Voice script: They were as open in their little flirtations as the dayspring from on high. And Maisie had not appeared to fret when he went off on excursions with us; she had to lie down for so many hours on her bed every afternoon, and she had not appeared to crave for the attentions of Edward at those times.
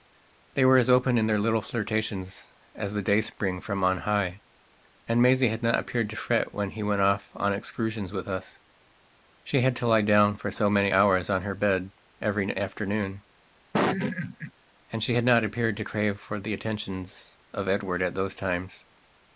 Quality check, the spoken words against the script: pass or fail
pass